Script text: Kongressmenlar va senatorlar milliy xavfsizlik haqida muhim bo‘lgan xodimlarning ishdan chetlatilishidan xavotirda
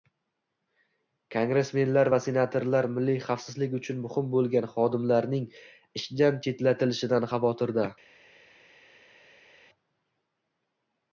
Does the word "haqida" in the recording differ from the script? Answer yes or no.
yes